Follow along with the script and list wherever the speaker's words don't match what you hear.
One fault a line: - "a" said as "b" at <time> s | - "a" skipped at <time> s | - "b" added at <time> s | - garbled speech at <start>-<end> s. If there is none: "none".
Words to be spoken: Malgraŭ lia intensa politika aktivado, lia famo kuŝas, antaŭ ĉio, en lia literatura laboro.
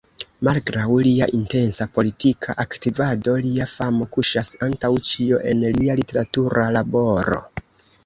none